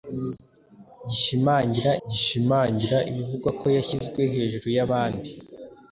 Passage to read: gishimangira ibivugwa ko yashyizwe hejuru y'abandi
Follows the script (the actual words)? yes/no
no